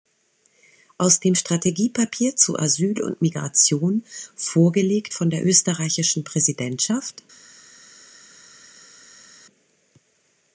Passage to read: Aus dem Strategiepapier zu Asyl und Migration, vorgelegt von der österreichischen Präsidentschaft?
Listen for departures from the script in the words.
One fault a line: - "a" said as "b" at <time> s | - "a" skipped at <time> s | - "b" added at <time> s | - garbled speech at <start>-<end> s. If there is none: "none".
none